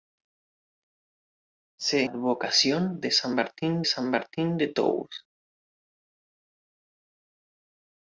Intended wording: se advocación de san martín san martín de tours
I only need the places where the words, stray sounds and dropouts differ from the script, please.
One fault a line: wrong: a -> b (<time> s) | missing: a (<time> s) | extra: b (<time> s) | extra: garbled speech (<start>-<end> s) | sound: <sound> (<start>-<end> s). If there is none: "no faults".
no faults